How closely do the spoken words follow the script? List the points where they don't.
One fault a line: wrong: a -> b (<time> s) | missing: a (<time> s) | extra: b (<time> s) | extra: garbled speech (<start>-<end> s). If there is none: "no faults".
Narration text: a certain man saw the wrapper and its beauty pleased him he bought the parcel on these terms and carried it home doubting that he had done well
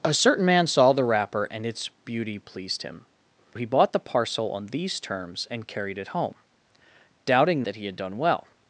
no faults